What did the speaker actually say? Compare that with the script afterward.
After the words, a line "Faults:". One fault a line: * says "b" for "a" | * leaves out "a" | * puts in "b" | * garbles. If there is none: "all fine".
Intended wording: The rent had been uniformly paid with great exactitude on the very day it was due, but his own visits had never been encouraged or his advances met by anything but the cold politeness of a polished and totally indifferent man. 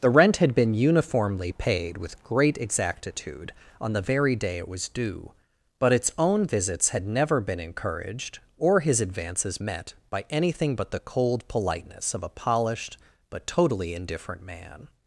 The rent had been uniformly paid with great exactitude on the very day it was due, but its own visits had never been encouraged or his advances met by anything but the cold politeness of a polished but totally indifferent man.
Faults:
* says "its" for "his"
* says "but" for "and"